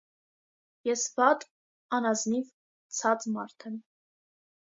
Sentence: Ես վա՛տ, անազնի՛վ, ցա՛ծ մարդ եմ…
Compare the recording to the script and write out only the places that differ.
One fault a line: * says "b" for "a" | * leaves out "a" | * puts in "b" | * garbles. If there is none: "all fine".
all fine